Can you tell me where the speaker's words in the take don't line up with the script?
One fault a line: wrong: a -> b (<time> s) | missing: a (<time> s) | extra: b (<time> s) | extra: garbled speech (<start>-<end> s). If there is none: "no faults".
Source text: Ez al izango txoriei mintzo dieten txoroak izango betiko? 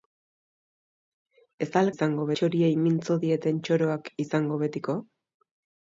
no faults